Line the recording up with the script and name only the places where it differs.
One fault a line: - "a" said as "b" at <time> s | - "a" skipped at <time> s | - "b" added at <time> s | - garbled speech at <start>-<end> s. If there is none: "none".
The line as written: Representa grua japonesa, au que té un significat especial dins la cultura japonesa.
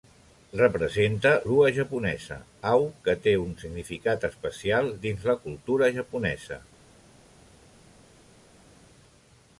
none